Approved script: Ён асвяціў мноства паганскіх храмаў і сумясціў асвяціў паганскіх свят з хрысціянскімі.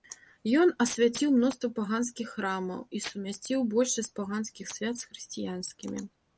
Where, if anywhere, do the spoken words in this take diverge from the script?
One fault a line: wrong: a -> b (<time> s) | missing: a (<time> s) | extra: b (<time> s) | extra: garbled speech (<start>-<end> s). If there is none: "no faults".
wrong: асвяціў -> большасць (3.8 s)